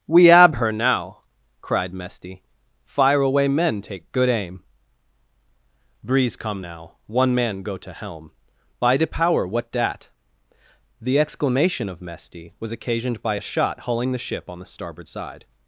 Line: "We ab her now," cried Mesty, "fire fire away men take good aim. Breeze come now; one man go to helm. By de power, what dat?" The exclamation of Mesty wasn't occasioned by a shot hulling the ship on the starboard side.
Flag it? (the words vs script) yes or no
yes